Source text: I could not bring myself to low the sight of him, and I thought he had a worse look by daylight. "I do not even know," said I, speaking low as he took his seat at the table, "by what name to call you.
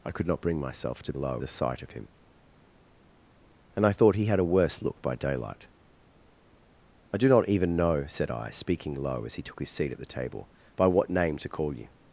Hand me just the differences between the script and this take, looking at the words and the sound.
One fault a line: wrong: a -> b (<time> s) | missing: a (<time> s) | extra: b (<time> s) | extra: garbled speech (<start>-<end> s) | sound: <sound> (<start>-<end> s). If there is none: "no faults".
no faults